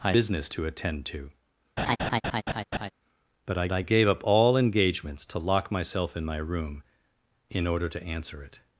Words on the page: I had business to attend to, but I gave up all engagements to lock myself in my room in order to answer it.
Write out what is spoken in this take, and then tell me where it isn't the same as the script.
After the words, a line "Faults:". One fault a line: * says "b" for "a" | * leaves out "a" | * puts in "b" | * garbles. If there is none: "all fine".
I business to attend to, but I I gave up all engagements to lock myself in my room in order to answer it.
Faults:
* leaves out "had"
* puts in "I"